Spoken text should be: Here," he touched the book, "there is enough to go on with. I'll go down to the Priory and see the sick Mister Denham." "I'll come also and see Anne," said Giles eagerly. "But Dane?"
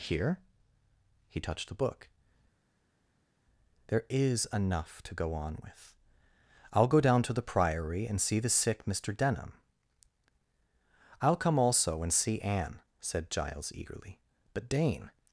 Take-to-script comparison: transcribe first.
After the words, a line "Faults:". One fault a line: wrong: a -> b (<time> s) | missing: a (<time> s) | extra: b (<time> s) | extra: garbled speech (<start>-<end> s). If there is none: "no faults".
Here," he touched the book, "there is enough to go on with. I'll go down to the Priory and see the sick Mister Denham." "I'll come also and see Anne," said Giles eagerly. "But Dane?"
Faults:
no faults